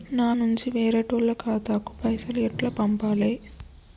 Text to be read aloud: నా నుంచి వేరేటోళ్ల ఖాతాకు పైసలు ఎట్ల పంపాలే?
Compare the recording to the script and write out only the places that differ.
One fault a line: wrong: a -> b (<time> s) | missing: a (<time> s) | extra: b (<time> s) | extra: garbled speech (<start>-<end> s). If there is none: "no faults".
no faults